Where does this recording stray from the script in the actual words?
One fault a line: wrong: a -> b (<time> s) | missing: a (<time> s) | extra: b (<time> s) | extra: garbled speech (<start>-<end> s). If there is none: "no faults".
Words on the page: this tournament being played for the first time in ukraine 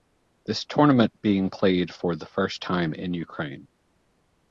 no faults